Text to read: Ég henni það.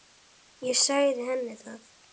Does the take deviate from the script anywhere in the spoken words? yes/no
yes